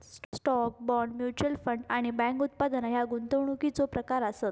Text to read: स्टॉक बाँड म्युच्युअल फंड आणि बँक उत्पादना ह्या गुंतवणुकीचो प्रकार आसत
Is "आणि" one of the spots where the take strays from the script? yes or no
no